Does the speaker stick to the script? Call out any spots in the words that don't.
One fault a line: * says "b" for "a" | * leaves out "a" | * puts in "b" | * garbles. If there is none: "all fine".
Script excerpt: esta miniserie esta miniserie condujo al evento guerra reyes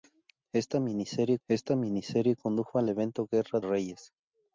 all fine